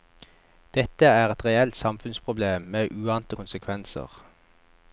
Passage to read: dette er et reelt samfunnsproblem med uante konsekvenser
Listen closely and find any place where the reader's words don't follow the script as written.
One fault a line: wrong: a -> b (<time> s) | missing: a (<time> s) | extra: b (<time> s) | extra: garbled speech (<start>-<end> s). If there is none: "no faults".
no faults